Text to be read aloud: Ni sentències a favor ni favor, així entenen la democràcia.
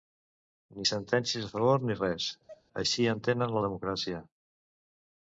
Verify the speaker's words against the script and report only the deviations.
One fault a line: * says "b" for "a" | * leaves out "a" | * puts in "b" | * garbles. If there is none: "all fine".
* says "res" for "favor"